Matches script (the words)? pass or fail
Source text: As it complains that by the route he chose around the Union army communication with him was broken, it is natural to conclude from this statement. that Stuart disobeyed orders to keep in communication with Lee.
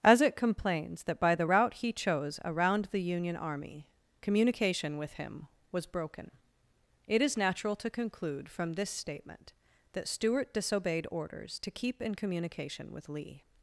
pass